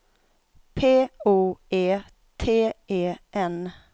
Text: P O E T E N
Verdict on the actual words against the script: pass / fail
pass